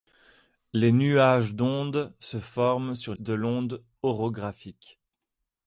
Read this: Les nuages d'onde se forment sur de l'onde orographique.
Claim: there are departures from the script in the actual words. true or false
false